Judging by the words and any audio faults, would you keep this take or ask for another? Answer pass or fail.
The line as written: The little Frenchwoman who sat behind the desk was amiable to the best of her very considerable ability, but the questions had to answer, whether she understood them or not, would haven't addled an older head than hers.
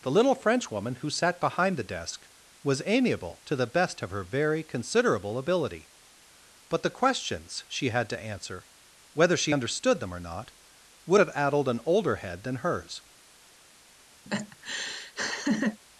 fail